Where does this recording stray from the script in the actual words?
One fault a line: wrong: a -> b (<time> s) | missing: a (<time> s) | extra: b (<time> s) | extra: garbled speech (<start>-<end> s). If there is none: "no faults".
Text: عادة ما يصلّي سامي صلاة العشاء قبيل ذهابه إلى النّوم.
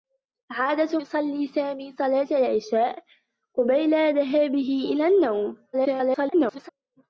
missing: ما (1.0 s)
extra: garbled speech (5.7-6.7 s)